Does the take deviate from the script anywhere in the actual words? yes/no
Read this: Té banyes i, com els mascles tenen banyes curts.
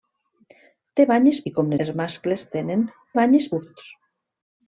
no